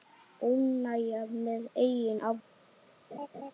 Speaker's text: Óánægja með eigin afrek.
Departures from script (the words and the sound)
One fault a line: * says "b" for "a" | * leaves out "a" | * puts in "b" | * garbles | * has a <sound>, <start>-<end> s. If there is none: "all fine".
* has a laugh, 3.1-3.5 s